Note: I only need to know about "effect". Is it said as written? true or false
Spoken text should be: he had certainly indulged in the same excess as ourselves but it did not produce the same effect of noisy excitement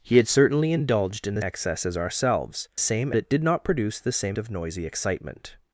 false